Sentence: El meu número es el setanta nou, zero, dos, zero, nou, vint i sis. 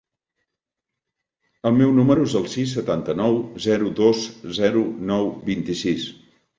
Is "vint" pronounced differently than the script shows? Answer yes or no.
no